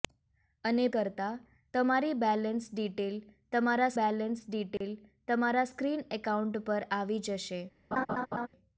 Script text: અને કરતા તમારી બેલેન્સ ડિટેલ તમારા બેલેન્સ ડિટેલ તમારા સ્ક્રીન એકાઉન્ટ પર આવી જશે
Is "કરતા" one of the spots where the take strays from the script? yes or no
no